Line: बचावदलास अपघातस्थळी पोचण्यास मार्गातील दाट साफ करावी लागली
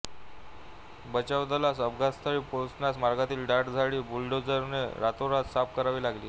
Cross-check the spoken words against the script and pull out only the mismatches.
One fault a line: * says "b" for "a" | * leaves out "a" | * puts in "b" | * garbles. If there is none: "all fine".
* puts in "झाडी बुलडोझरने रातोरात"